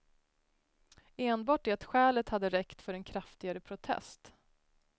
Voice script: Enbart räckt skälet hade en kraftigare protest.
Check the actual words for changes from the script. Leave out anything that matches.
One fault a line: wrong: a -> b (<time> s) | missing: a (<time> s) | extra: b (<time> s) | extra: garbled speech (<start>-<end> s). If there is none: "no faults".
wrong: räckt -> det (1.6 s)
extra: räckt för (2.5 s)